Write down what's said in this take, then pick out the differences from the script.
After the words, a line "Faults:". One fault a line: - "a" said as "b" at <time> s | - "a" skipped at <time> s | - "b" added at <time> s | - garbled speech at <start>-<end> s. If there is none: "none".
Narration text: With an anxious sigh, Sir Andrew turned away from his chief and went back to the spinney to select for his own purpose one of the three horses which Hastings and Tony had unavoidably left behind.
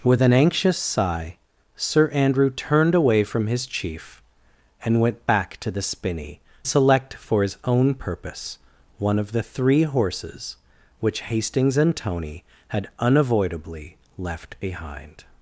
With an anxious sigh, Sir Andrew turned away from his chief and went back to the spinney select for his own purpose one of the three horses which Hastings and Tony had unavoidably left behind.
Faults:
- "to" skipped at 6.4 s